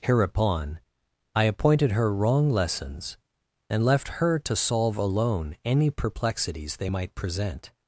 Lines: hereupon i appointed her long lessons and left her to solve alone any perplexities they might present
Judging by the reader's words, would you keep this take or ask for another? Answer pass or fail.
fail